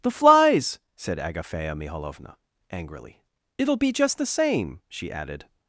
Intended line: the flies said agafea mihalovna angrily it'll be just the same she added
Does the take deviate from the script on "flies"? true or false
false